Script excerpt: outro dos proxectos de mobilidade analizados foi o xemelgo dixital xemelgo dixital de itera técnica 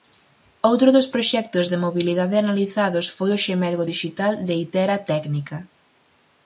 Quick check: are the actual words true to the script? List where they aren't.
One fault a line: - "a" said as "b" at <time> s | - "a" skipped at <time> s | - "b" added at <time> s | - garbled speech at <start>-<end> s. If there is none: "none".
- "xemelgo dixital" skipped at 4.3 s